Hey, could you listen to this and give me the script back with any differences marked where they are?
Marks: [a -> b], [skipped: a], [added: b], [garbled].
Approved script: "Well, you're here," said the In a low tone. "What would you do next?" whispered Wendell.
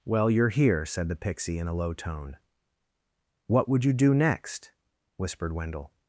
"Well, you're here," said the [added: Pixie] In a low tone. "What would you do next?" whispered Wendell.